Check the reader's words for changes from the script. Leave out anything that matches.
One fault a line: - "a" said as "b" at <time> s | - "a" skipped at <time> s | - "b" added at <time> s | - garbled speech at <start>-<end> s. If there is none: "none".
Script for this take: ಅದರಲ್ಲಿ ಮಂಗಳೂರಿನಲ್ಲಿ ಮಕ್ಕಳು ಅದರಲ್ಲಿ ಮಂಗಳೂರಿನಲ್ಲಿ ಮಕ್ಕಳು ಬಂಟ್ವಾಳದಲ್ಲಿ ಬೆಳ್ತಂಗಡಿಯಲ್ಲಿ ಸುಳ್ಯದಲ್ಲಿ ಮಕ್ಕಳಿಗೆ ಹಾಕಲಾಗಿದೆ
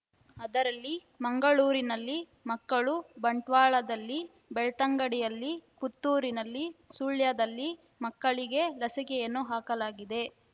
- "ಅದರಲ್ಲಿ ಮಂಗಳೂರಿನಲ್ಲಿ ಮಕ್ಕಳು" skipped at 2.9 s
- "ಪುತ್ತೂರಿನಲ್ಲಿ" added at 5.8 s
- "ಲಸಿಕೆಯನ್ನು" added at 8.8 s